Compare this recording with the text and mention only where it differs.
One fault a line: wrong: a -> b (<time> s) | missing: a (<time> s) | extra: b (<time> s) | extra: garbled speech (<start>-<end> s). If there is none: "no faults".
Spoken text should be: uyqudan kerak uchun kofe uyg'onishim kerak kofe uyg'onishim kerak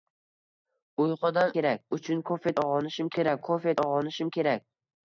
no faults